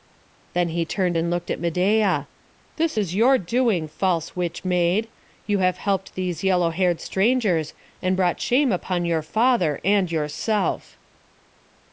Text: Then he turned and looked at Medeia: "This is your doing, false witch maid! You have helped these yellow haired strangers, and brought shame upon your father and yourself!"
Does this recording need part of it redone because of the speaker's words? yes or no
no